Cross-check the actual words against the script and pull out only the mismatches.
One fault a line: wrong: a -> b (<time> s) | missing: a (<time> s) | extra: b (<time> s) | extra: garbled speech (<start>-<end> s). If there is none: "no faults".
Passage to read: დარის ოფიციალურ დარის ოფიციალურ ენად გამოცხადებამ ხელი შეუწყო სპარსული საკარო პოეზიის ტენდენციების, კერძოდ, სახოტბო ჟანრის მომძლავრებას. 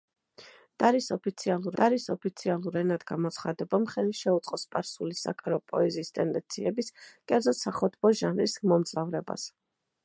no faults